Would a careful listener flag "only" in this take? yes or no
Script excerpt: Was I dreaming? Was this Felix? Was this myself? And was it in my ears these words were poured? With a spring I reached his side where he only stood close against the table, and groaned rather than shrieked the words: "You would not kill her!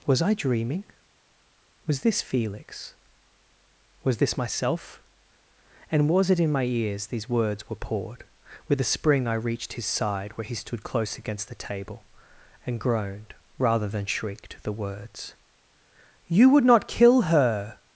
yes